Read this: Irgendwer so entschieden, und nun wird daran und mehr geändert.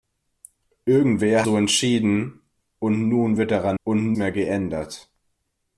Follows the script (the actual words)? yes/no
yes